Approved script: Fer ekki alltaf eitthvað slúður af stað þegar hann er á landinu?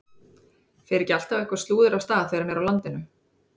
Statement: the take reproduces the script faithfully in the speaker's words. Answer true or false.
true